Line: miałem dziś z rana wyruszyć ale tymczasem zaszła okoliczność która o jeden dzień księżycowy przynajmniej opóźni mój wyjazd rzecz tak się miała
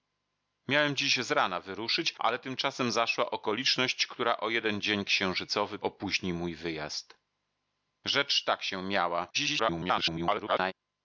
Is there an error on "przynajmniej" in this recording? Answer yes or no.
yes